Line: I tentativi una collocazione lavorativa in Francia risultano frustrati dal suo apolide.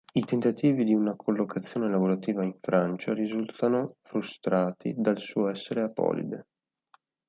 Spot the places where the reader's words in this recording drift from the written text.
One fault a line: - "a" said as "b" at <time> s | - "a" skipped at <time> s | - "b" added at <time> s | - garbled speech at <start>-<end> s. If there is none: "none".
- "di" added at 0.8 s
- "essere" added at 5.5 s